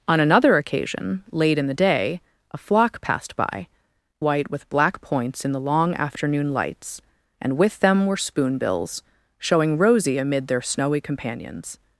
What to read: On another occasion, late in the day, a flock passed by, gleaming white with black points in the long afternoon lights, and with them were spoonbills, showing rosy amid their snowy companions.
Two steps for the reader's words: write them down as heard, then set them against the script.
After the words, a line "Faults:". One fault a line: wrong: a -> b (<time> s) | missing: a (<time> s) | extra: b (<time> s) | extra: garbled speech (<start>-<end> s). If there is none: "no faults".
On another occasion, late in the day, a flock passed by, white with black points in the long afternoon lights, and with them were spoonbills, showing rosy amid their snowy companions.
Faults:
missing: gleaming (3.7 s)